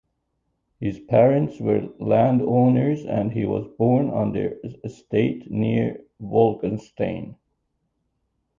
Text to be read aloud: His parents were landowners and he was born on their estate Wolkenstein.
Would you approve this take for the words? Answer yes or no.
no